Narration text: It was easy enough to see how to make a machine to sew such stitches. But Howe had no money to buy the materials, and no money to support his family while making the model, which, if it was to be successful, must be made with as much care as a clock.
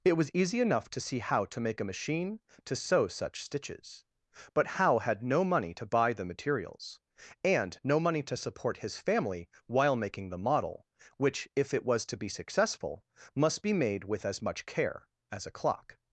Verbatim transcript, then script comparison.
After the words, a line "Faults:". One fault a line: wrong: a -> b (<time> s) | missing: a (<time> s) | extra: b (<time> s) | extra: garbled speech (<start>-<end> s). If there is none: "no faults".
It was easy enough to see how to make a machine to sew such stitches. But Howe had no money to buy the materials, and no money to support his family while making the model, which, if it was to be successful, must be made with as much care as a clock.
Faults:
no faults